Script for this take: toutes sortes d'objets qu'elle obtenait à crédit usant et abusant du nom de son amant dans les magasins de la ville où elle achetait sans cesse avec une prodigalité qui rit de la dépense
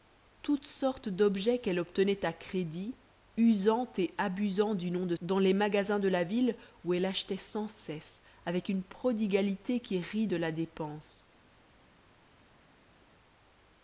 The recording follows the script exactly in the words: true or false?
false